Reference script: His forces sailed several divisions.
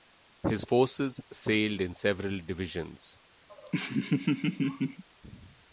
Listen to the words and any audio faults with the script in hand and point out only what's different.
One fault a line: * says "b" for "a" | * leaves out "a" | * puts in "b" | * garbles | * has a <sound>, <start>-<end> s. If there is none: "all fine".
* puts in "in"
* has a laugh, 3.5-5.0 s